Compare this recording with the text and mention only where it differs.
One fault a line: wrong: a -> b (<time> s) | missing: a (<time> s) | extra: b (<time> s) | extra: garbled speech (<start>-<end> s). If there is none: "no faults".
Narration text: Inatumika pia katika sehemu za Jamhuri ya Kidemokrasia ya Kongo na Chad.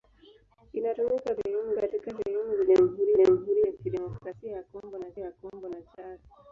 wrong: pia -> sehemu (1.4 s)
extra: Jamhuri (3.1 s)
extra: ya Kongo na (5.2 s)